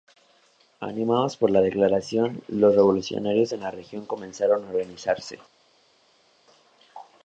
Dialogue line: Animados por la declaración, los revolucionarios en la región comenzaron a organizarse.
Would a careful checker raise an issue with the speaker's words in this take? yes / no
no